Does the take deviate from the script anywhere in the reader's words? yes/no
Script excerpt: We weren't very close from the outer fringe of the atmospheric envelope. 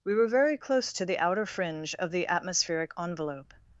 yes